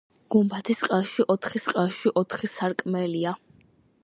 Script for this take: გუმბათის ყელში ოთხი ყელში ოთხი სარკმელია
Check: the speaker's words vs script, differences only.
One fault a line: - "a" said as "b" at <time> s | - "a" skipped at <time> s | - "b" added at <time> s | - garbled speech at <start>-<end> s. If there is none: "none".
none